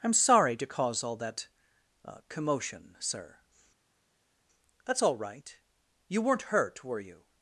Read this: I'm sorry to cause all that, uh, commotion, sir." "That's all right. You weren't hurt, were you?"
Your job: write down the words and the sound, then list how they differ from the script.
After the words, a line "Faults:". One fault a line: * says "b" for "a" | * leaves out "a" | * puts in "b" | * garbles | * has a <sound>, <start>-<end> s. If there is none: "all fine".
I'm sorry to cause all that, uh, commotion, sir." "That's all right. You weren't hurt, were you?"
Faults:
all fine